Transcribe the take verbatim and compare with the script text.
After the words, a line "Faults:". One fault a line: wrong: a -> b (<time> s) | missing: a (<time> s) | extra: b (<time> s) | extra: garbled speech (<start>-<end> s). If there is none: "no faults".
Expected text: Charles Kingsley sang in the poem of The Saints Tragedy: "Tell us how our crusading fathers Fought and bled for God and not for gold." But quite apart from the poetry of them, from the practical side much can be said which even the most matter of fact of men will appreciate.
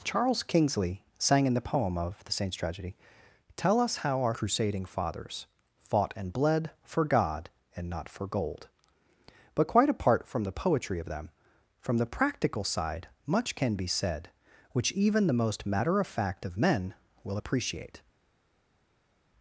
Charles Kingsley sang in the poem of The Saints Tragedy: "Tell us how our crusading fathers Fought and bled for God and not for gold." But quite apart from the poetry of them, from the practical side much can be said which even the most matter of fact of men will appreciate.
Faults:
no faults